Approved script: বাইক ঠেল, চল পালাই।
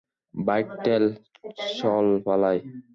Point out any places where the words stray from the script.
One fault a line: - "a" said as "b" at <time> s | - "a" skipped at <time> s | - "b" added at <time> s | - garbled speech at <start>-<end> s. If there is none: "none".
none